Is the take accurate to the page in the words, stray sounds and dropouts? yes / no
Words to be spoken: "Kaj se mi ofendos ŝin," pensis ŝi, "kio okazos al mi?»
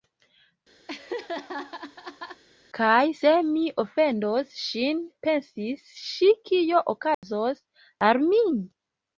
no